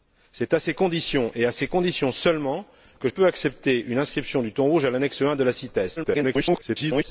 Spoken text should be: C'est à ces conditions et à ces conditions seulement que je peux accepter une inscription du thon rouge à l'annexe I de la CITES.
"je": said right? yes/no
no